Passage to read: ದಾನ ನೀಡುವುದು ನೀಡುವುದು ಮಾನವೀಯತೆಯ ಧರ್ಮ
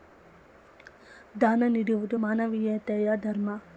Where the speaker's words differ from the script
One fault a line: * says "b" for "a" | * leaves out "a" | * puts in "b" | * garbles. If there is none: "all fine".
* leaves out "ನೀಡುವುದು"